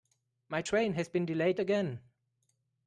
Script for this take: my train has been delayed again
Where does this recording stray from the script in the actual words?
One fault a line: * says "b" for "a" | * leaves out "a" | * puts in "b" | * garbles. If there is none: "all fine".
all fine